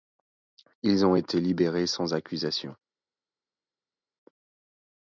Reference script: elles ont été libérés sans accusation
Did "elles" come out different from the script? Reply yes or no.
yes